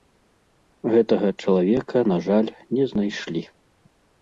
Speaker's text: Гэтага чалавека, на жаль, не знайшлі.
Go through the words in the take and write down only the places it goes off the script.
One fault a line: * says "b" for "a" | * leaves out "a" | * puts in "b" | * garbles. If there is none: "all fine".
all fine